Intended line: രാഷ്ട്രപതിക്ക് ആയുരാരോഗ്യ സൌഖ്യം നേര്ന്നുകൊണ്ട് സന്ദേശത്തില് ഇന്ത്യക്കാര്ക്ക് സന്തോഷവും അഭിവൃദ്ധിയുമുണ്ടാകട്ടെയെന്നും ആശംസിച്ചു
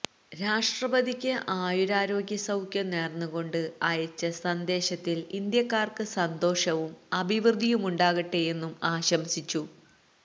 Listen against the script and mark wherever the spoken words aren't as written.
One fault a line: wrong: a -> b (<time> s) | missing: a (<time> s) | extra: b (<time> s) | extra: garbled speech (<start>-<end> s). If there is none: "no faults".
extra: അയച്ച (3.8 s)